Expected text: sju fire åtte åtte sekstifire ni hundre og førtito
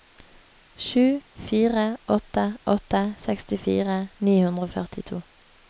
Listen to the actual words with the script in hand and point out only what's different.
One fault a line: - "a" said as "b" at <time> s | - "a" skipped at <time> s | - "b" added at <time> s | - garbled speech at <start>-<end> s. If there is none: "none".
none